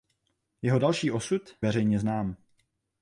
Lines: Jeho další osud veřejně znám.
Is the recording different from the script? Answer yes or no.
no